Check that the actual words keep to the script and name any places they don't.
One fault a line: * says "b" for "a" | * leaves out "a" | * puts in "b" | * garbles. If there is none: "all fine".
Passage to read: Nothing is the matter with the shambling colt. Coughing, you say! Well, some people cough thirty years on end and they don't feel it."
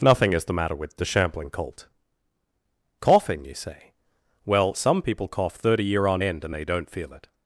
* says "year" for "years"